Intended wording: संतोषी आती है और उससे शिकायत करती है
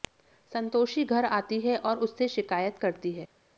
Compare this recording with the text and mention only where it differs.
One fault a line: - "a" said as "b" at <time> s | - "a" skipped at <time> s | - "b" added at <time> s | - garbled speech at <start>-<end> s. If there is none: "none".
- "घर" added at 1.1 s